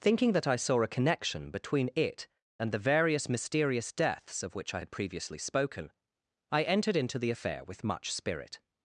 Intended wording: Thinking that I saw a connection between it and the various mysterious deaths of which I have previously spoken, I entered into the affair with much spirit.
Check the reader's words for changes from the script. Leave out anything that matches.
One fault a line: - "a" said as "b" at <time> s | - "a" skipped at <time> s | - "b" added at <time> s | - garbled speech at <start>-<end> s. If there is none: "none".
- "have" said as "had" at 4.8 s